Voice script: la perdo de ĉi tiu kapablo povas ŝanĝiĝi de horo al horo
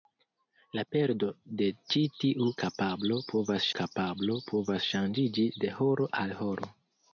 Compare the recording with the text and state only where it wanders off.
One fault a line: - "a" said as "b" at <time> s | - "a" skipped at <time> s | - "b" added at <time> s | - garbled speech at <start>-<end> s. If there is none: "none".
- "kapablo povas" added at 3.8 s